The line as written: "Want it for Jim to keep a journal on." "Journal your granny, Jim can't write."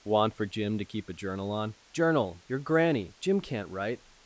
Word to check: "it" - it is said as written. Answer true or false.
false